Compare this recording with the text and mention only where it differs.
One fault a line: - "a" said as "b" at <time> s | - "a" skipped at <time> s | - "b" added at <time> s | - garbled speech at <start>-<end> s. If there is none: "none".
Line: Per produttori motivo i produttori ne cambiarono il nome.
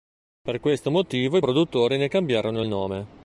- "produttori" said as "questo" at 0.6 s